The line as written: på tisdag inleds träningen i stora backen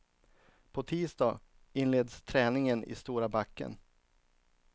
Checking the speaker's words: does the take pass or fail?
pass